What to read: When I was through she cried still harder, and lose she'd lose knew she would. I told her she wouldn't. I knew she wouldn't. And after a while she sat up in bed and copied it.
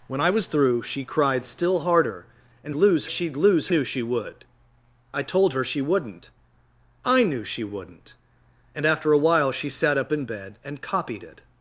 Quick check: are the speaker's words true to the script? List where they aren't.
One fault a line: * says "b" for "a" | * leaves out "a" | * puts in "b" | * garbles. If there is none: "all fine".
all fine